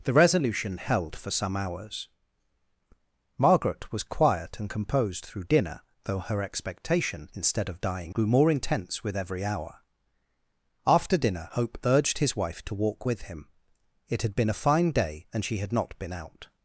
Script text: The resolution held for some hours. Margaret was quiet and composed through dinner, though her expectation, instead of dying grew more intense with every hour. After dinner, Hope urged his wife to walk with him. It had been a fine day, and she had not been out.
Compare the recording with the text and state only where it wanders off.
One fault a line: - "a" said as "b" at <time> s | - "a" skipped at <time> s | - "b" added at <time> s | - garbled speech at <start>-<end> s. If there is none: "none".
none